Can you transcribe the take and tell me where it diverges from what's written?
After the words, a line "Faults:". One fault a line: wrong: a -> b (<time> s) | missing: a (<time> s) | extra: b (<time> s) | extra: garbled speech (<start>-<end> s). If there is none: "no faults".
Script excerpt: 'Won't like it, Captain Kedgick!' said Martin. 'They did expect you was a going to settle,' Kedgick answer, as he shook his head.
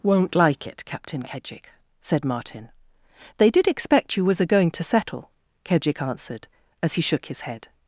'Won't like it, Captain Kedgick!' said Martin. 'They did expect you was a going to settle,' Kedgick answered, as he shook his head.
Faults:
wrong: answer -> answered (6.0 s)